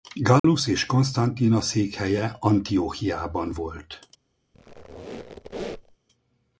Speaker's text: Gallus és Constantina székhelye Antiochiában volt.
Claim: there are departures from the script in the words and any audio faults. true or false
true